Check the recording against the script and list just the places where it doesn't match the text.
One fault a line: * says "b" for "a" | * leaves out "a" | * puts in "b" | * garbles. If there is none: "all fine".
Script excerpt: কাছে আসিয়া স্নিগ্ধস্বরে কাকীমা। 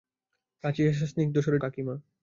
all fine